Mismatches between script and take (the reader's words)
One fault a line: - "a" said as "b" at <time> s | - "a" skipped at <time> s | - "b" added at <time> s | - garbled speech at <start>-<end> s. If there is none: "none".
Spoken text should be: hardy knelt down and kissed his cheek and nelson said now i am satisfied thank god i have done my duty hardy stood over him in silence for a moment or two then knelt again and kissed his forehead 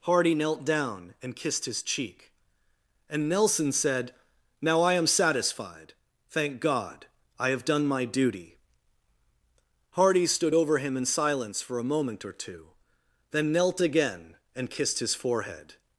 none